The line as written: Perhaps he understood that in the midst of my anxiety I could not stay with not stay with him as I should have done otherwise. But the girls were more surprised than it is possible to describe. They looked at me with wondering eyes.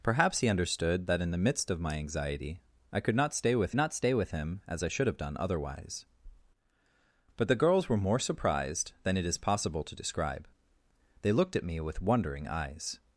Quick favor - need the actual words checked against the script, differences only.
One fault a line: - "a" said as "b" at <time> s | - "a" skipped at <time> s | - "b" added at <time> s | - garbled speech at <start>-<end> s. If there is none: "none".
none